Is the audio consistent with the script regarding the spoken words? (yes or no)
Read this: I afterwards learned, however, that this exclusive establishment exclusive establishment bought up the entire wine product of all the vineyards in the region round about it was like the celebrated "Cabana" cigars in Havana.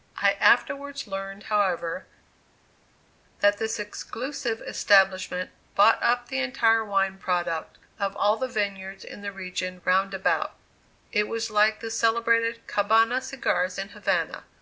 no